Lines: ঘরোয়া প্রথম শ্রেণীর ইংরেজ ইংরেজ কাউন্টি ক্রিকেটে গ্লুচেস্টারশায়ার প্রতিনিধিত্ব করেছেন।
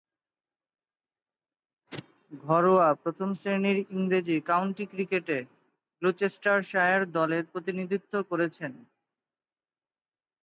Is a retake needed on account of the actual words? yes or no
yes